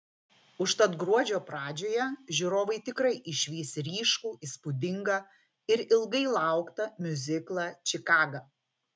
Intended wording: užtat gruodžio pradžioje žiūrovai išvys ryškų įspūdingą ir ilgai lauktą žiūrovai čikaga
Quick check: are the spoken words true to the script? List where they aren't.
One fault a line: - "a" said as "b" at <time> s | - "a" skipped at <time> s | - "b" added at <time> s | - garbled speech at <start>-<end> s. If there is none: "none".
- "tikrai" added at 2.9 s
- "žiūrovai" said as "miuziklą" at 7.1 s